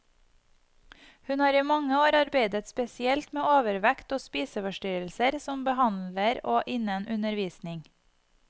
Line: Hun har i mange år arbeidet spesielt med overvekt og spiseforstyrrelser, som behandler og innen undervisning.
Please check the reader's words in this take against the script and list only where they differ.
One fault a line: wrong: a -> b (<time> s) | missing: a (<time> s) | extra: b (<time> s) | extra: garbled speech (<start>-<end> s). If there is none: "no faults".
no faults